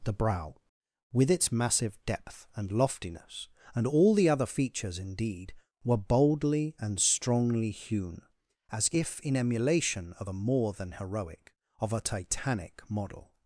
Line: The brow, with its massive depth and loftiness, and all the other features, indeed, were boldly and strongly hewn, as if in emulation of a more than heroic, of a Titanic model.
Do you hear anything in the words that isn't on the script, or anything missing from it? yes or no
no